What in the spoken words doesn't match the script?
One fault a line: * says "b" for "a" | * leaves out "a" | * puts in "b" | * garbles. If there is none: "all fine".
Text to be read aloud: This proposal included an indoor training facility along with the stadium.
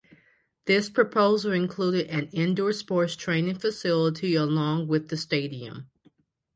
* puts in "sports"